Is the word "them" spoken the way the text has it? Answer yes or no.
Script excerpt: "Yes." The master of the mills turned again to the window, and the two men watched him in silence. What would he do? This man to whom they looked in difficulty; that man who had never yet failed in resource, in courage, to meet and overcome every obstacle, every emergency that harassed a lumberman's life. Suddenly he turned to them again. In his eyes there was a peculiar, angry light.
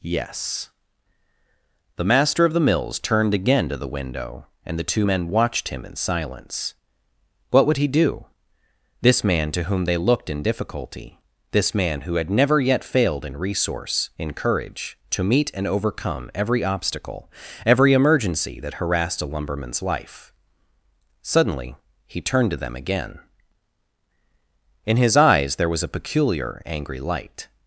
yes